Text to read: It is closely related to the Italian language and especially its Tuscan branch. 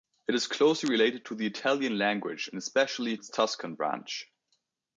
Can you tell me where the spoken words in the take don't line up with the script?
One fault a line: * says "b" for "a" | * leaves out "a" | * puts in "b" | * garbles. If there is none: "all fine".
all fine